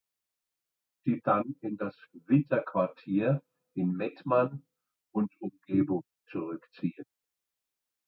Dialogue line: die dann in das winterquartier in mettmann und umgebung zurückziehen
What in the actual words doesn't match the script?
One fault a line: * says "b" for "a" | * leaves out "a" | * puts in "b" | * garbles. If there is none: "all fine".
all fine